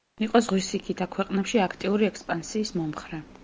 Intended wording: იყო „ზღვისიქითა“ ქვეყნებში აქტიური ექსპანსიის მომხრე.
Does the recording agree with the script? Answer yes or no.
yes